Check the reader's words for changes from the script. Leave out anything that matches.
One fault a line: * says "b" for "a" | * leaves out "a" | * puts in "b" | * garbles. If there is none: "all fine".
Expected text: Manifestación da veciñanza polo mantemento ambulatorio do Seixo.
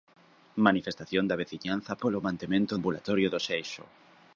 all fine